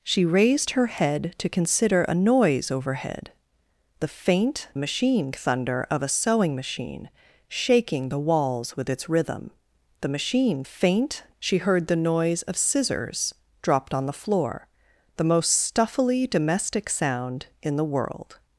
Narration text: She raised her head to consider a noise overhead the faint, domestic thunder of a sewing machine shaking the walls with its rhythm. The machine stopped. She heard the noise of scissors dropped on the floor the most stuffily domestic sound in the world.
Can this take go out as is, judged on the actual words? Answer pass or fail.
fail